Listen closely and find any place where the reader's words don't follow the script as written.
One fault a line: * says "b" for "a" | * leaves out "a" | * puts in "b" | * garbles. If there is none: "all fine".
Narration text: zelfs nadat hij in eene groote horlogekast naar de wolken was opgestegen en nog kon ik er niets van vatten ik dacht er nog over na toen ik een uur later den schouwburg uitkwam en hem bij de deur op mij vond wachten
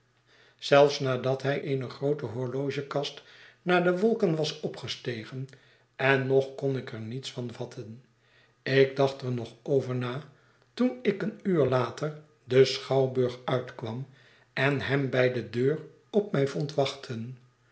* leaves out "in"